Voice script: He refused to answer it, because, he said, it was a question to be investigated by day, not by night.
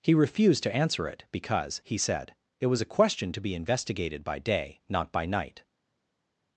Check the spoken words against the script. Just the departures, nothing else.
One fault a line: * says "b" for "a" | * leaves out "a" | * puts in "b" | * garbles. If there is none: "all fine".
all fine